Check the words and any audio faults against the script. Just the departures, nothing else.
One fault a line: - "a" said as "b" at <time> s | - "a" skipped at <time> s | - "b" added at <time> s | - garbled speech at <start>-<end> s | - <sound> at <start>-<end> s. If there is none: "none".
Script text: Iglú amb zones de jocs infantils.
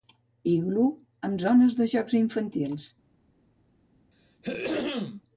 - throat clearing at 4.1-5.2 s